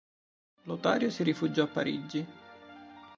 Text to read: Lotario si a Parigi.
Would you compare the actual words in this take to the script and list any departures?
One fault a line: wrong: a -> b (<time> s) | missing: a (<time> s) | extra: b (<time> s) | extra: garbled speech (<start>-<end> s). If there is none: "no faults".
extra: rifugiò (1.2 s)